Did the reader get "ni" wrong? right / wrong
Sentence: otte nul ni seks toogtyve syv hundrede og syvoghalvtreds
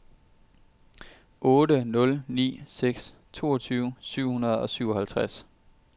right